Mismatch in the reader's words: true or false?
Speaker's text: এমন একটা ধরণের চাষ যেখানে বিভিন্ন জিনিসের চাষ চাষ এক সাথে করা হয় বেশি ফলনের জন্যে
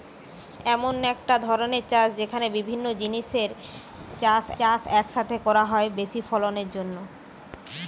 false